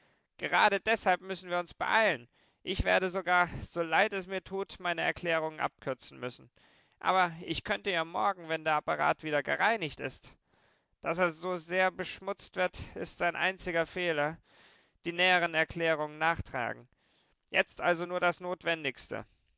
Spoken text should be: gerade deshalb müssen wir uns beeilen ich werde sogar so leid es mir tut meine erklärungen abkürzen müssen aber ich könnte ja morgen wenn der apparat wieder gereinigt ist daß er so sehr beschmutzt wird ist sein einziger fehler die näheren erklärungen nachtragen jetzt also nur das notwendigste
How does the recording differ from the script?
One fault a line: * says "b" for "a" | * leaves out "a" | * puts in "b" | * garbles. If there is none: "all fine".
all fine